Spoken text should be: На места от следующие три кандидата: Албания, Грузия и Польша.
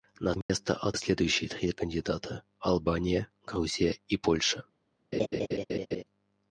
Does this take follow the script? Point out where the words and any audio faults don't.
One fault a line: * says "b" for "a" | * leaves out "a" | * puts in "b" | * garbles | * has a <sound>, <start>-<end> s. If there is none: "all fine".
* has a dropout, 0.4-0.5 s
* has a laugh, 5.1-6.0 s